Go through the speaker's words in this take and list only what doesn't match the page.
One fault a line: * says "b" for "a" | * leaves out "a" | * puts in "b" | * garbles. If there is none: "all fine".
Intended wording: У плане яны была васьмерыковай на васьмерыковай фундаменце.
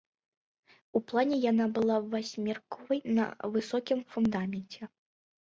* says "яна" for "яны"
* says "высокім" for "васьмерыковай"